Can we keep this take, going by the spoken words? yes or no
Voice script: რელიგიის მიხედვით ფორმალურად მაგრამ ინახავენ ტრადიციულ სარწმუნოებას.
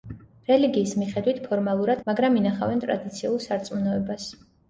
yes